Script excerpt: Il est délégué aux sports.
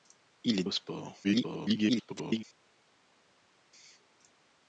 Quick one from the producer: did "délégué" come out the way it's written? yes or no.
no